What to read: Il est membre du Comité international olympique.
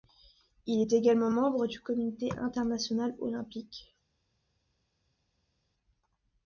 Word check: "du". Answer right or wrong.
right